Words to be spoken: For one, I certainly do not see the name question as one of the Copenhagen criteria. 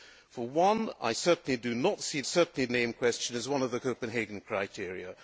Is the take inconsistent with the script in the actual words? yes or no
yes